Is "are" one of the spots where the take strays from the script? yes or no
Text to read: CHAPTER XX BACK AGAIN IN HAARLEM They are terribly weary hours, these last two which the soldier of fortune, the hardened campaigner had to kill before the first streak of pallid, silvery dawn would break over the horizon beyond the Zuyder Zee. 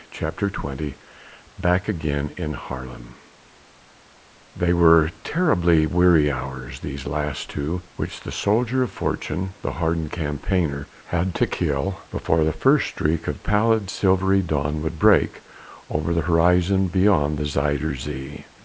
yes